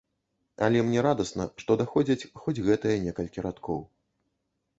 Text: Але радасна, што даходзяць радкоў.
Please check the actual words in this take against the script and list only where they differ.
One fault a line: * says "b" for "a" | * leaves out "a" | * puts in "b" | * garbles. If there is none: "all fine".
* puts in "мне"
* puts in "хоць гэтыя некалькі"